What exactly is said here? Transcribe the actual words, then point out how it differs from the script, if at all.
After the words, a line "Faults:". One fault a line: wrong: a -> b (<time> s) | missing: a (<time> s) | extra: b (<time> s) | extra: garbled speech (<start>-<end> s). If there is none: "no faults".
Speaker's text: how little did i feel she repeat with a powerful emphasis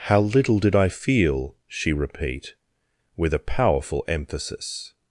how little did i feel she repeat with a powerful emphasis
Faults:
no faults